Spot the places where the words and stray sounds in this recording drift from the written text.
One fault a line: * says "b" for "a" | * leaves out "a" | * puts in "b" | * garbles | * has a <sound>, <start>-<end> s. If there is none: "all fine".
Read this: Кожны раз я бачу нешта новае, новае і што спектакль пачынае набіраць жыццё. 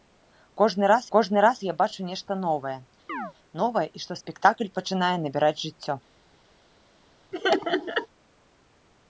* puts in "кожны раз"
* has a chirp, 3.1-3.3 s
* has a laugh, 7.3-8.1 s